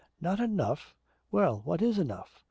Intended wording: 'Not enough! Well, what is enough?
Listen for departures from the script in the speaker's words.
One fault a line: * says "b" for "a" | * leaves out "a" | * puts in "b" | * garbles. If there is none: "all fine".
all fine